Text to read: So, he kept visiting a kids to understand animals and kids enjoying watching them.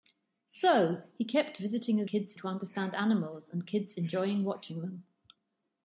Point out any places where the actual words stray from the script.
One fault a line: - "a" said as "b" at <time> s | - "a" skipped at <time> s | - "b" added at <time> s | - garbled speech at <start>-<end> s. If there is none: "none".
none